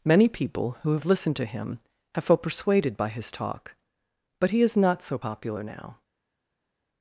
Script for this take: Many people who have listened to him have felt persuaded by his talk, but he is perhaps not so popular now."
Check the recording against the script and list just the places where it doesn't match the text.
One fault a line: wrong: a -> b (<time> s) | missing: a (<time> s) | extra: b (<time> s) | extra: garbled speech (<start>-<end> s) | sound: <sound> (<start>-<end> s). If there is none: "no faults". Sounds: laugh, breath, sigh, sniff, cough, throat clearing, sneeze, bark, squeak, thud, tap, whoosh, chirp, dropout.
missing: perhaps (4.8 s)